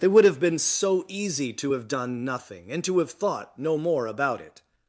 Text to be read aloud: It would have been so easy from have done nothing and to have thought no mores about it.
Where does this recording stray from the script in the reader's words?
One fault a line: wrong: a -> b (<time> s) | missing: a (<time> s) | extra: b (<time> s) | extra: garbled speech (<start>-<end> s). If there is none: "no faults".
wrong: from -> to (1.5 s)
wrong: mores -> more (3.8 s)